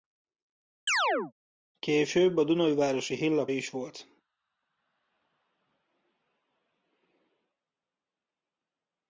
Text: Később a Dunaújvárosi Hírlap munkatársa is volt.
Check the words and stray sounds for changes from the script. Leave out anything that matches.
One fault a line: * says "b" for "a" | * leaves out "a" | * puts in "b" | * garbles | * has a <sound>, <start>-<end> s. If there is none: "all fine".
* has a chirp, 0.9-1.3 s
* leaves out "munkatársa"